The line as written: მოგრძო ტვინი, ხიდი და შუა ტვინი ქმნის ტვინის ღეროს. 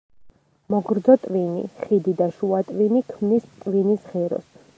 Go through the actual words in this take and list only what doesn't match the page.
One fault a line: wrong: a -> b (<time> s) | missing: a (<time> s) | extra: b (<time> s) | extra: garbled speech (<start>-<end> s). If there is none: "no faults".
no faults